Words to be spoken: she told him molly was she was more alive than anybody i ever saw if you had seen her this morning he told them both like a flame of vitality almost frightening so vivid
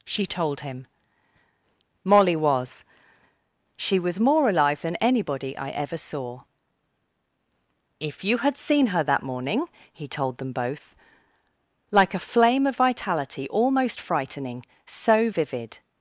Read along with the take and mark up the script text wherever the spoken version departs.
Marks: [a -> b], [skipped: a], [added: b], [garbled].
she told him molly was she was more alive than anybody i ever saw if you had seen her [this -> that] morning he told them both like a flame of vitality almost frightening so vivid